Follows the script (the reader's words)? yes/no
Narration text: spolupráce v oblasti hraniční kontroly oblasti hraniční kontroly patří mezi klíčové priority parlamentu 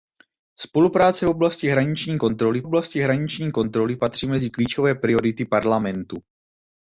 yes